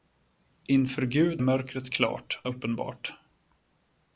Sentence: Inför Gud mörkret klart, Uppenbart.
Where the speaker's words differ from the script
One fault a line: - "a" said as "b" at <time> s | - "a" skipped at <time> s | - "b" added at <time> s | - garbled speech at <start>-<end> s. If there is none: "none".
none